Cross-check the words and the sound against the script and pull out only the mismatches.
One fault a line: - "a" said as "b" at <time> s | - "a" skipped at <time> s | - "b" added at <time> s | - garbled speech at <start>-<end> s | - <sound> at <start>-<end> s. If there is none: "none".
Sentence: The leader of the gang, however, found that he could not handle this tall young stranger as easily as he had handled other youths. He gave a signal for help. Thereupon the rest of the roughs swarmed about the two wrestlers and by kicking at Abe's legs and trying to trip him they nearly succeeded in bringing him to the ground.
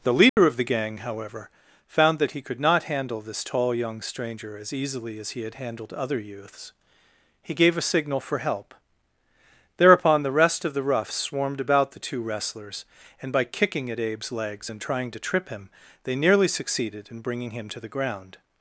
- dropout at 0.3-0.4 s